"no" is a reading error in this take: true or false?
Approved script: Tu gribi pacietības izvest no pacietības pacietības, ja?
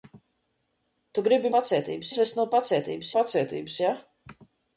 false